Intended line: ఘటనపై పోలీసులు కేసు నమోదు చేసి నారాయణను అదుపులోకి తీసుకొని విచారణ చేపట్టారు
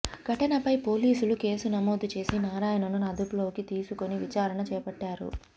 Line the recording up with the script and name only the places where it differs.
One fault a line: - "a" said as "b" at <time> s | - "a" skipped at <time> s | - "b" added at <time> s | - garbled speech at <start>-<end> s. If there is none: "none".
none